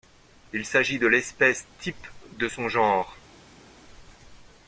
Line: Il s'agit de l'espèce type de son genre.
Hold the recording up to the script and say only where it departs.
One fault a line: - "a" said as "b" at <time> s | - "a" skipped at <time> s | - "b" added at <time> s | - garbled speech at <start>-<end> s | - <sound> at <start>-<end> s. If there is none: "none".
none